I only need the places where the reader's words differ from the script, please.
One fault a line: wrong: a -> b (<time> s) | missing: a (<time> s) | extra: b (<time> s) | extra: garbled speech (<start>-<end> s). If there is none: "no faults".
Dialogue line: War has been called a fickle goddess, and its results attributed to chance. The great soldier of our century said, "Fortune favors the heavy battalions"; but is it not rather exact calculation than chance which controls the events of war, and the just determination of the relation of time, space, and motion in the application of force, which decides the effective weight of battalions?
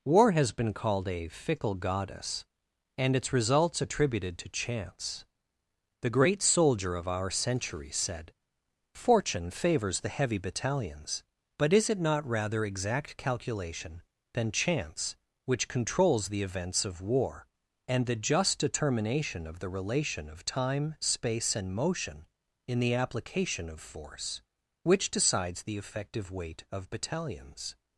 no faults